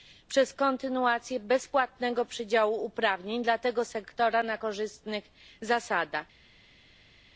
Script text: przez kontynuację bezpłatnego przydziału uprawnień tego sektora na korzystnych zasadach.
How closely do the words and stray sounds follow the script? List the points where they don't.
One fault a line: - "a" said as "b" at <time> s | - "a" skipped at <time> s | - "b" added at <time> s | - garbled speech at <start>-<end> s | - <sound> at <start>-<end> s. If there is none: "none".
- "dla" added at 3.4 s